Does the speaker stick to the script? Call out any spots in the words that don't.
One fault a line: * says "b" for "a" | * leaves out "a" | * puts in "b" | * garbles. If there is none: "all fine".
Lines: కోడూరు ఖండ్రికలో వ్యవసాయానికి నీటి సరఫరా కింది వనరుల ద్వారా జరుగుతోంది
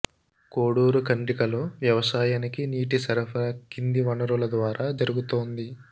all fine